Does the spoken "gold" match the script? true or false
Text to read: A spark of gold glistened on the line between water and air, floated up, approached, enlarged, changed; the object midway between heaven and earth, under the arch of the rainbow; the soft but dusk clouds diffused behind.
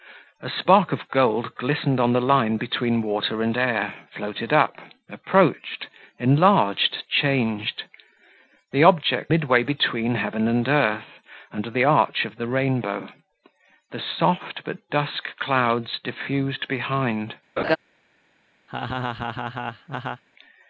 true